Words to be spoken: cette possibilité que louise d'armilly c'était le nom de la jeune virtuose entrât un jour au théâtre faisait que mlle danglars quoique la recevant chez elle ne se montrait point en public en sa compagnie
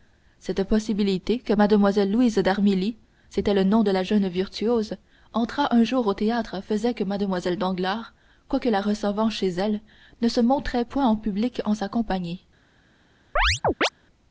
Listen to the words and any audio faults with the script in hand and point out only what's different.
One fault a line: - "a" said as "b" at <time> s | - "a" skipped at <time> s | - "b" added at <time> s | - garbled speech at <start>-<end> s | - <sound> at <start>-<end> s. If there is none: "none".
- "mlle" added at 1.5 s
- chirp at 13.4-13.9 s